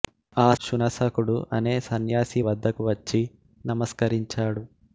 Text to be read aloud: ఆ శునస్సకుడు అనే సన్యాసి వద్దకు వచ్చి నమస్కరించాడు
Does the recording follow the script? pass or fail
pass